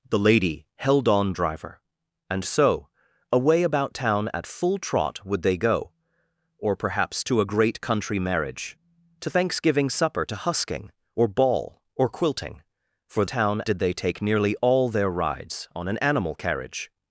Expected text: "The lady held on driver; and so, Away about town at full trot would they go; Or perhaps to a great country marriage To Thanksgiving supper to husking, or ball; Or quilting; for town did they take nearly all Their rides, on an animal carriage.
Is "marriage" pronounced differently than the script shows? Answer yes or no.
no